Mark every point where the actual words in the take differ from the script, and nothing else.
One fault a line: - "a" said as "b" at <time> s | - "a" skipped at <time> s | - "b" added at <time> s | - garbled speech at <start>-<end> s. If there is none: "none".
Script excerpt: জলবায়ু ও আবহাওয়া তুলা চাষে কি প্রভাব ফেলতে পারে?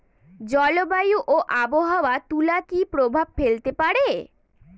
- "চাষে" skipped at 2.6 s